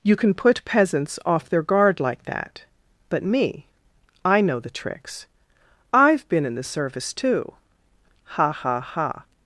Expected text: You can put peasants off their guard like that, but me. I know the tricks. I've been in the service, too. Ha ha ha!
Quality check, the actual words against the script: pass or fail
pass